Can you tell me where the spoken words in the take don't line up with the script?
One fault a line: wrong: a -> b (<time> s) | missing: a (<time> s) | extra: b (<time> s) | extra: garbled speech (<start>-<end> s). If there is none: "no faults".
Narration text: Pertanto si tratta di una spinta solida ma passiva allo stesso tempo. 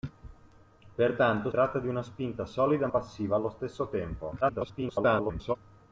missing: si (1.5 s)
missing: ma (2.9 s)
extra: garbled speech (4.4-5.6 s)